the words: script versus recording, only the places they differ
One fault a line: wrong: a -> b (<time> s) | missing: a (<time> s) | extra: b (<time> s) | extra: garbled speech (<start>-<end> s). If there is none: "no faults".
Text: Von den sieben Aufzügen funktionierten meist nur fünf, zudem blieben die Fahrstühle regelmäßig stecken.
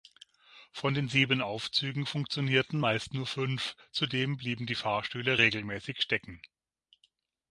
no faults